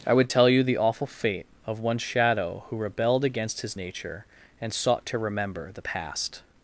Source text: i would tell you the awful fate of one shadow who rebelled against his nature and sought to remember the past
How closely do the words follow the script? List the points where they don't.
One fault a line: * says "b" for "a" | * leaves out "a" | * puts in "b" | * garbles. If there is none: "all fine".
all fine